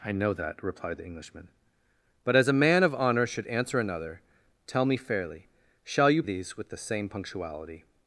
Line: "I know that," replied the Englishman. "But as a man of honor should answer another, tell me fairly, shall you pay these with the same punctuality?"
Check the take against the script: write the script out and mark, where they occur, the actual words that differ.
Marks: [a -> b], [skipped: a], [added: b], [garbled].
"I know that," replied the Englishman. "But as a man of honor should answer another, tell me fairly, shall you [skipped: pay] these with the same punctuality?"